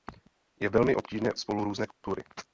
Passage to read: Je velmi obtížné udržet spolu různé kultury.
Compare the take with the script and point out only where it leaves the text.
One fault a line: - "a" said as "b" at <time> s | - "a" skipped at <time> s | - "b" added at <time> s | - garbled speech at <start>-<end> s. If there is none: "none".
- "udržet" skipped at 1.3 s